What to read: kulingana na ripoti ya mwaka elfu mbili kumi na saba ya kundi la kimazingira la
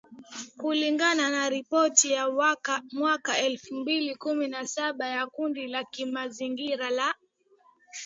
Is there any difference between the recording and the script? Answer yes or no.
no